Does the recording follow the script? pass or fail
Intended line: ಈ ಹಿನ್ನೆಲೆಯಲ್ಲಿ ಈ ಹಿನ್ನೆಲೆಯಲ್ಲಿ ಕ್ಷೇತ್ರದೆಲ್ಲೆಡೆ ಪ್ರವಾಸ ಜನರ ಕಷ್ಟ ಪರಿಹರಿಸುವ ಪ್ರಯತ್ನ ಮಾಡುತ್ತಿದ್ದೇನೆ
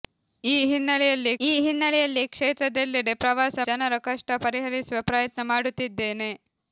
pass